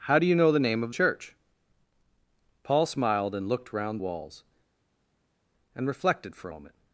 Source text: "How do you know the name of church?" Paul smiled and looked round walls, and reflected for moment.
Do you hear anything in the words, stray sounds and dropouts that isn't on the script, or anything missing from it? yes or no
no